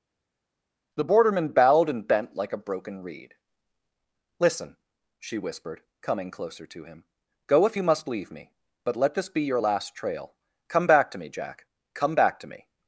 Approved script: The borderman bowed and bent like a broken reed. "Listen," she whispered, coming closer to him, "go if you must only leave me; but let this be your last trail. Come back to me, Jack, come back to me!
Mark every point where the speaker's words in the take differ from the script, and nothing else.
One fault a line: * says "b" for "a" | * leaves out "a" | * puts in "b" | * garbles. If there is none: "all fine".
* leaves out "only"